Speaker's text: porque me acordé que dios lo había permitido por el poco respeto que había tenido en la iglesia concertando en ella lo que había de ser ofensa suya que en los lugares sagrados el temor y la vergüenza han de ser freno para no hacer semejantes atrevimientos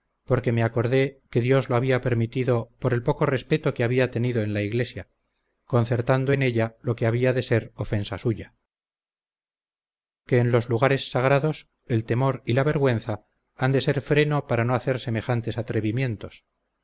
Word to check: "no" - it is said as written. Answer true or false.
true